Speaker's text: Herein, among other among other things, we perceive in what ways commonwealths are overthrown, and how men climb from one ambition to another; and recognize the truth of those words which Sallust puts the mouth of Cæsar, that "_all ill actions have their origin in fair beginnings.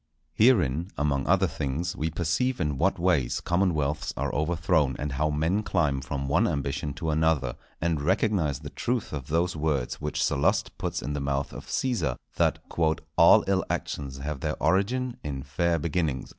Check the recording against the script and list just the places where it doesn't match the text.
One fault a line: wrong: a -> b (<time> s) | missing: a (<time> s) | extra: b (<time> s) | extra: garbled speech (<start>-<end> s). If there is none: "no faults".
missing: among other (1.5 s)
extra: in (11.0 s)